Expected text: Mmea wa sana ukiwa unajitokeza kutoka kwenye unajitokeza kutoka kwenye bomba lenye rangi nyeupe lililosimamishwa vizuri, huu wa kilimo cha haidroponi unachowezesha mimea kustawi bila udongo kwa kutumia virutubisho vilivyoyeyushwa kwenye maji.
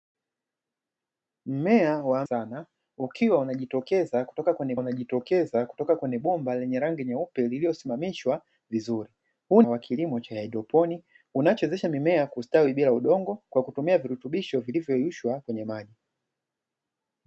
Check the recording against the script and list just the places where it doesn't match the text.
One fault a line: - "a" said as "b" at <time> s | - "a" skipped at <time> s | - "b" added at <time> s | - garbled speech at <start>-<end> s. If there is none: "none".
none